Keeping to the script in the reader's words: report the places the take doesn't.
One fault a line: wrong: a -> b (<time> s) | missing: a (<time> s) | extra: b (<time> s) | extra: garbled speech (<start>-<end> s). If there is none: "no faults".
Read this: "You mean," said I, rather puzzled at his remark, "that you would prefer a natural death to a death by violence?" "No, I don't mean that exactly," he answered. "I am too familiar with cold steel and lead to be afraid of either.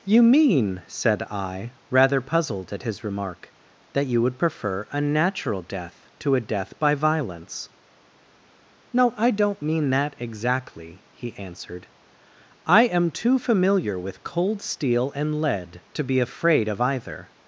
no faults